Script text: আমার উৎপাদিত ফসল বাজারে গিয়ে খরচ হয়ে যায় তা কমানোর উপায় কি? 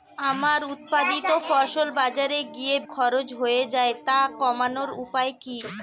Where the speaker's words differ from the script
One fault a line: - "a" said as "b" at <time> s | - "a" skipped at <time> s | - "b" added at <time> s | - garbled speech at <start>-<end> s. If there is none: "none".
none